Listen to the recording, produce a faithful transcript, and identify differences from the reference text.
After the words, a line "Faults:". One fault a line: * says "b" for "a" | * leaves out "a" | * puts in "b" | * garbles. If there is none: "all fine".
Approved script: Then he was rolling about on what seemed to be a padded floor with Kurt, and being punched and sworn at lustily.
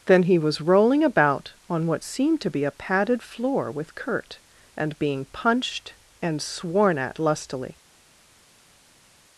Then he was rolling about on what seemed to be a padded floor with Kurt, and being punched and sworn at lustily.
Faults:
all fine